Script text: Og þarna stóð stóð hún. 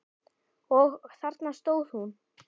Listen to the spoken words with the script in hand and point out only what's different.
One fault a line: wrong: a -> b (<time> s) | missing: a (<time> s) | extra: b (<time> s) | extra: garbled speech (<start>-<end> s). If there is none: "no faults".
missing: stóð (1.9 s)